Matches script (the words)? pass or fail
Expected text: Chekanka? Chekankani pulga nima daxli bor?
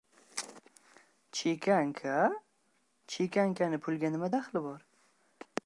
pass